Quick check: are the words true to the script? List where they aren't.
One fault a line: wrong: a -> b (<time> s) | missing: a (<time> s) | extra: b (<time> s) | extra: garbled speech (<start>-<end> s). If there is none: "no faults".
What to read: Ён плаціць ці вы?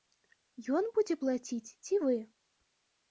extra: будзе (0.9 s)